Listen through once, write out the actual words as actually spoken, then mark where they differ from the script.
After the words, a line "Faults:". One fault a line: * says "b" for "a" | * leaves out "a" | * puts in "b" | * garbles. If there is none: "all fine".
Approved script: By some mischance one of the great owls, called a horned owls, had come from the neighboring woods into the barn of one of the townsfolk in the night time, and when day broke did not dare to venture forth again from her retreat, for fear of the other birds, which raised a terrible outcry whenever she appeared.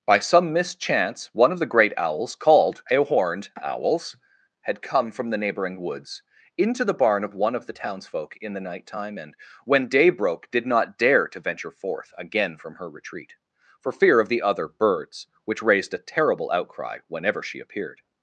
By some mischance one of the great owls, called a horned owls, had come from the neighboring woods into the barn of one of the townsfolk in the night time, and when day broke did not dare to venture forth again from her retreat, for fear of the other birds, which raised a terrible outcry whenever she appeared.
Faults:
all fine